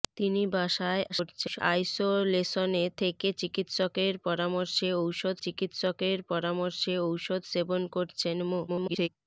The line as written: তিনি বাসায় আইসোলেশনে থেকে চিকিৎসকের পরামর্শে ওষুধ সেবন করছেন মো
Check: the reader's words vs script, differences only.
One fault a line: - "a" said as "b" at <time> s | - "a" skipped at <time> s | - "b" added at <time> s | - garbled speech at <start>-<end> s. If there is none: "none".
- garbled speech at 1.1-1.6 s
- "চিকিৎসকের পরামর্শে ওষুধ" added at 5.4 s
- garbled speech at 8.7-9.1 s